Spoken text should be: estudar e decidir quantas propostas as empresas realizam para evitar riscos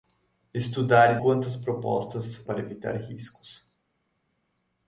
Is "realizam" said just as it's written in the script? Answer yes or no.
no